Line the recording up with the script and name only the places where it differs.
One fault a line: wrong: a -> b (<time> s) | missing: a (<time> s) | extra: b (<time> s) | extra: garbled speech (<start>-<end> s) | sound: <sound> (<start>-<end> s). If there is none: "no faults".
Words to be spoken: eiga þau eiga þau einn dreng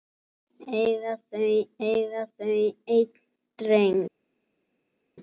no faults